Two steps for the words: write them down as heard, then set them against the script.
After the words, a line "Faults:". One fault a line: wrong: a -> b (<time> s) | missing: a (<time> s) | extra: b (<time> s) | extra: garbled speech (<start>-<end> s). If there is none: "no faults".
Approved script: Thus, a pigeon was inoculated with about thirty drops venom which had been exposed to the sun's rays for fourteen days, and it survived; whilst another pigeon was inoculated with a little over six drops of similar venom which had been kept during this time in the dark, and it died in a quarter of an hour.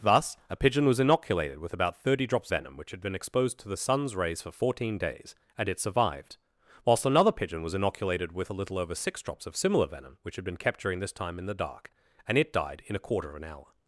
Thus, a pigeon was inoculated with about thirty drops venom which had been exposed to the sun's rays for fourteen days, and it survived; whilst another pigeon was inoculated with a little over six drops of similar venom which had been kept during this time in the dark, and it died in a quarter of an hour.
Faults:
no faults